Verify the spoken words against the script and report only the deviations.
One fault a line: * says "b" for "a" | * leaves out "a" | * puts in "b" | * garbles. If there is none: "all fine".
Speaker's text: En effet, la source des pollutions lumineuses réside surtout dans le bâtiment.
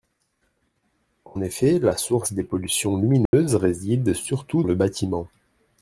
* leaves out "dans"